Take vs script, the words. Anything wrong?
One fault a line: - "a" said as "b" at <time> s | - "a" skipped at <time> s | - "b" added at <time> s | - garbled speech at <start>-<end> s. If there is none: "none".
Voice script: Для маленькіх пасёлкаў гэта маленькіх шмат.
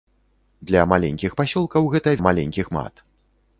none